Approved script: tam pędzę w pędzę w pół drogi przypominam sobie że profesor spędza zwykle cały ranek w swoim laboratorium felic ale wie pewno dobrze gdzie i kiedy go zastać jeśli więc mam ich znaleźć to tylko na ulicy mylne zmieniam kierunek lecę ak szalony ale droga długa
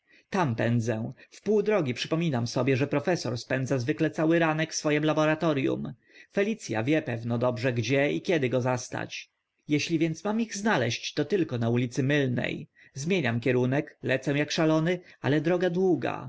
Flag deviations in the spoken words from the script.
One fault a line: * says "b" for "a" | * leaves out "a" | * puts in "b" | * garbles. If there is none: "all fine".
* leaves out "pędzę w"
* says "a" for "ale"